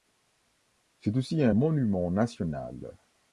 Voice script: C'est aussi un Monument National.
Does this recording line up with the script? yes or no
yes